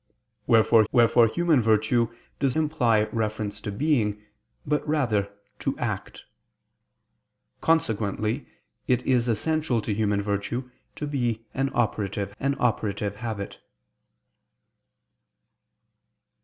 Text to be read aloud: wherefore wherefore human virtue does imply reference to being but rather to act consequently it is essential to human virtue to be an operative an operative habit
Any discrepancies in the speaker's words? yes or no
no